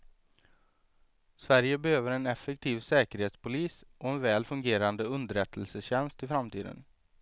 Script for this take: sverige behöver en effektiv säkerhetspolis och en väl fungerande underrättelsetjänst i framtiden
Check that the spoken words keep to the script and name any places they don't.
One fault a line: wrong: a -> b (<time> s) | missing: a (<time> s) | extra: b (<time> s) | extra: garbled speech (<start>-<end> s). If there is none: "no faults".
no faults